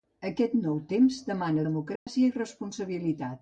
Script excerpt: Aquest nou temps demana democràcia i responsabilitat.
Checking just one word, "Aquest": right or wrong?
right